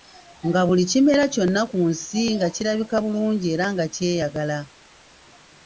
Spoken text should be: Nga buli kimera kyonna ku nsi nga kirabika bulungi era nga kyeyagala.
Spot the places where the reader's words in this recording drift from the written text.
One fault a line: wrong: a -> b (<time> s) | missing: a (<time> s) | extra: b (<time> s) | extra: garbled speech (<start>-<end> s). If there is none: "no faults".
no faults